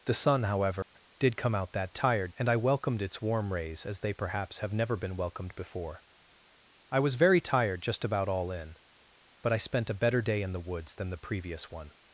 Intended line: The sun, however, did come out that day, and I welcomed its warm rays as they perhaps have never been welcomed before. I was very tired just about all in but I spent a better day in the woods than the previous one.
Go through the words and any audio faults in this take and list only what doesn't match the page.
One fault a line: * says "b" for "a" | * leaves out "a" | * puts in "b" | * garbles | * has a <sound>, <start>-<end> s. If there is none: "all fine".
* has a dropout, 0.8-1.0 s
* says "tired" for "day"